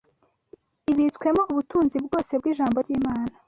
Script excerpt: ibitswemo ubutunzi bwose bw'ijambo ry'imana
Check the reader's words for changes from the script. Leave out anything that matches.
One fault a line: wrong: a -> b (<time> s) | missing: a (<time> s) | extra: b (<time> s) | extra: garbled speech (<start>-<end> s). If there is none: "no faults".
no faults